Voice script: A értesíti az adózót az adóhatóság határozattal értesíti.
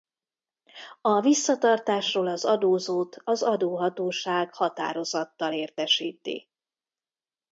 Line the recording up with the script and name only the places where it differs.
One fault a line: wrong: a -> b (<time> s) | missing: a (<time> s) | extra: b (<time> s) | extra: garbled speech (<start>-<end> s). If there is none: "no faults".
wrong: értesíti -> visszatartásról (1.2 s)